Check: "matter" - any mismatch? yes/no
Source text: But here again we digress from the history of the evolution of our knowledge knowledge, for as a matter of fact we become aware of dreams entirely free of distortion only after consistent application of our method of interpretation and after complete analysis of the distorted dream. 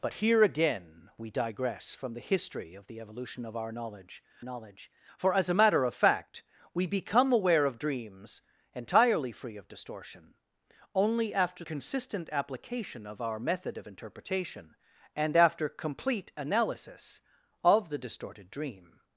no